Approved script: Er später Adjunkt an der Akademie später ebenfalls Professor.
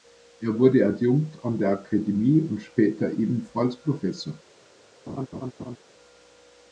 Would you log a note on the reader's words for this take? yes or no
yes